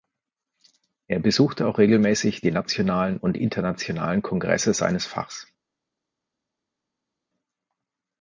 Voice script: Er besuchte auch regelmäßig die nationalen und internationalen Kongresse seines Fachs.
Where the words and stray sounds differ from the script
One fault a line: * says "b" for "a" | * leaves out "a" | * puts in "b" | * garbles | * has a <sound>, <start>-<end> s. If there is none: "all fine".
all fine